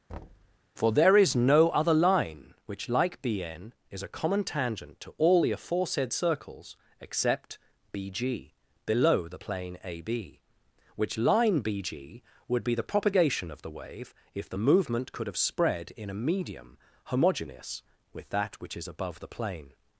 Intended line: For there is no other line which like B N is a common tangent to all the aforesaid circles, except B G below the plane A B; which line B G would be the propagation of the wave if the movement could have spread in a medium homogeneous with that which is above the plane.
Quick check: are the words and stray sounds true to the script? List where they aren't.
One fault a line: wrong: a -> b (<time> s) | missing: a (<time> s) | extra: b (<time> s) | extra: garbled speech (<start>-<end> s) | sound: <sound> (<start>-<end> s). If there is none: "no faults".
sound: thud (0.1-0.6 s)